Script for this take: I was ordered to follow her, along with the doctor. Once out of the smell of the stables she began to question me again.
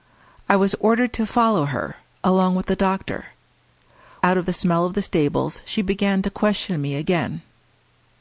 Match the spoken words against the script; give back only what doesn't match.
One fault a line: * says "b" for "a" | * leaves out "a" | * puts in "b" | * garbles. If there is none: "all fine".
* leaves out "Once"